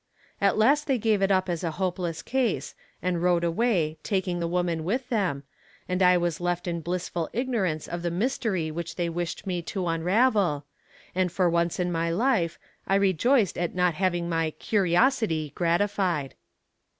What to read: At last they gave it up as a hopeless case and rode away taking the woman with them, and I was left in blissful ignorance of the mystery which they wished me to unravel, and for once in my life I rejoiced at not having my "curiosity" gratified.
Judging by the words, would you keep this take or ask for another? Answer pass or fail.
pass